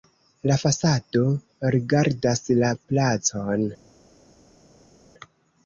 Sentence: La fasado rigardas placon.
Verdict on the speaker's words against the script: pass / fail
fail